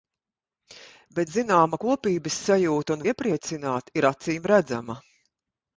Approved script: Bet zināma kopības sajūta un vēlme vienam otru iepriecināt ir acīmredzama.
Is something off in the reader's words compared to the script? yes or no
yes